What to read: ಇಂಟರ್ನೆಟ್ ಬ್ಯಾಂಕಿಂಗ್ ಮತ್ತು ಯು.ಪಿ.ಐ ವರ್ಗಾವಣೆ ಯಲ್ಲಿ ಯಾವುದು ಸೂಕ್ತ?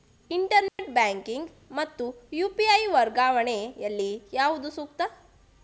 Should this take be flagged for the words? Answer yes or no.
no